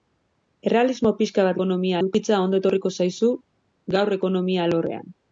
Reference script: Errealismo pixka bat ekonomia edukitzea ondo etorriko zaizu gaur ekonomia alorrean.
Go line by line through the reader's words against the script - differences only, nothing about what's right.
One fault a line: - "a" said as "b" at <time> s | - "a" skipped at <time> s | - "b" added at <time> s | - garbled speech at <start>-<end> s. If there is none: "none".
none